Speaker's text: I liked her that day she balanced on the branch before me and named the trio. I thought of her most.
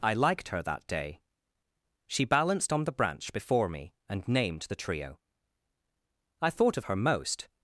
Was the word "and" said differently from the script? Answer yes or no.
no